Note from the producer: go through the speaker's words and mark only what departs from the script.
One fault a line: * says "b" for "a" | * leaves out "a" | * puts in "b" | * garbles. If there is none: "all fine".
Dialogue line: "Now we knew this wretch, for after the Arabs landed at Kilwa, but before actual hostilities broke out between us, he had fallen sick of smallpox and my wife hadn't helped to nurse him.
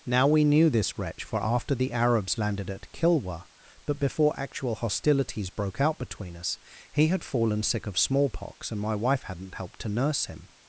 all fine